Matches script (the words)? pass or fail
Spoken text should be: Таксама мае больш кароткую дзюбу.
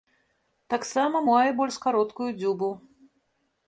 pass